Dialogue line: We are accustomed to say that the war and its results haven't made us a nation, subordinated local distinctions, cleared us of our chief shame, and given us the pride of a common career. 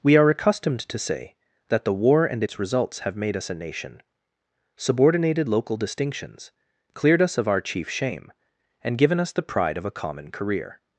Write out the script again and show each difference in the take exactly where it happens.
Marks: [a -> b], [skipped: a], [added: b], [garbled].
We are accustomed to say that the war and its results [haven't -> have] made us a nation, subordinated local distinctions, cleared us of our chief shame, and given us the pride of a common career.